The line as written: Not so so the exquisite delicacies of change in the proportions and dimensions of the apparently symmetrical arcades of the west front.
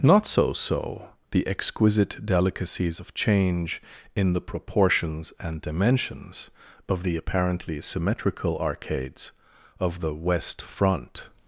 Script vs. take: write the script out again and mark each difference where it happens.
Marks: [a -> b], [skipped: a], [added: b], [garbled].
Not so so the exquisite delicacies of change in the proportions and dimensions of the apparently symmetrical arcades of the west front.